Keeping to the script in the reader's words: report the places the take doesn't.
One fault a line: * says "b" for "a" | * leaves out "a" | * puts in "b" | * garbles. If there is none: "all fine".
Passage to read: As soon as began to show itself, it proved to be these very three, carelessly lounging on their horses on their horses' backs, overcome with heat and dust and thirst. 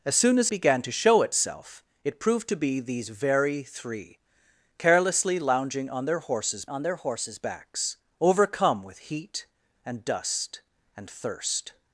all fine